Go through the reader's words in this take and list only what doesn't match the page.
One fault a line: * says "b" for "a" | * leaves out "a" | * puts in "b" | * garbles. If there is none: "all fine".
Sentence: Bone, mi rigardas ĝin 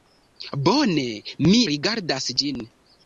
all fine